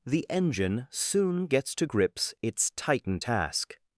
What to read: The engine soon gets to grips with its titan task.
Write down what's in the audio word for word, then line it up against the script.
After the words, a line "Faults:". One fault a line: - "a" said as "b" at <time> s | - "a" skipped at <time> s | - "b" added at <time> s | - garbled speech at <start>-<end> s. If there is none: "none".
The engine soon gets to grips its titan task.
Faults:
- "with" skipped at 2.3 s